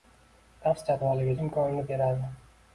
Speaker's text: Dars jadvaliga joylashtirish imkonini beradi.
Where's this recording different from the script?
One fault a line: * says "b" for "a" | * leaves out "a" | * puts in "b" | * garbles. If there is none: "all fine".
* leaves out "joylashtirish"